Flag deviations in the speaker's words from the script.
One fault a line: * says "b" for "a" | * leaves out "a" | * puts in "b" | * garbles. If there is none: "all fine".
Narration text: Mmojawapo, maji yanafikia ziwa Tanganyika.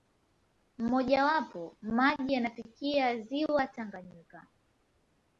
all fine